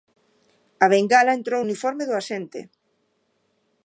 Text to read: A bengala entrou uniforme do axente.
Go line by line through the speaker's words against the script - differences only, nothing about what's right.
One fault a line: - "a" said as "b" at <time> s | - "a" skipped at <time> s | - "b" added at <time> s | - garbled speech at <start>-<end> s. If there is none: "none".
none